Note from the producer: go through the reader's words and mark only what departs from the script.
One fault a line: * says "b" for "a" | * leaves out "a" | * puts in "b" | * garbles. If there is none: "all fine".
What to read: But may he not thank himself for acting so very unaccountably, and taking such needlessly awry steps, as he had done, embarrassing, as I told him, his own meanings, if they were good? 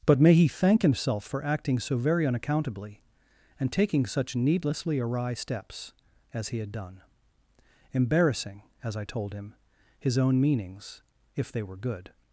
* leaves out "not"